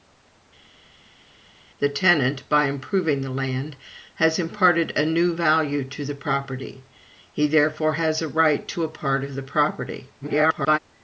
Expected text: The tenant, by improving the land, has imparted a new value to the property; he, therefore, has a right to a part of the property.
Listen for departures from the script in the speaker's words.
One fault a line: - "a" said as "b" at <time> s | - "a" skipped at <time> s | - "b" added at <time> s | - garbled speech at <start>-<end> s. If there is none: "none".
- garbled speech at 10.2-10.8 s